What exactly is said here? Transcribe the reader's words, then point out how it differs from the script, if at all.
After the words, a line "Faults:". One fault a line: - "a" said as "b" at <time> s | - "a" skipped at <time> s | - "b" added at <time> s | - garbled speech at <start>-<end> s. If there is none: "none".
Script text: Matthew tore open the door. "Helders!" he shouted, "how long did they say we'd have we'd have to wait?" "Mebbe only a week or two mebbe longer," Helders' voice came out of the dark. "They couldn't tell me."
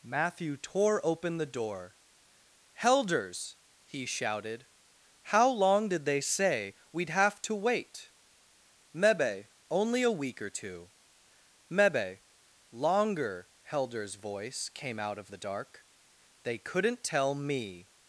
Matthew tore open the door. "Helders!" he shouted, "how long did they say we'd have to wait?" "Mebbe only a week or two mebbe longer," Helders' voice came out of the dark. "They couldn't tell me."
Faults:
- "we'd have" skipped at 7.4 s